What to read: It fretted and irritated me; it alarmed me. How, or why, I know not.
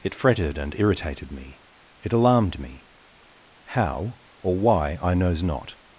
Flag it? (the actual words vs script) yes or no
yes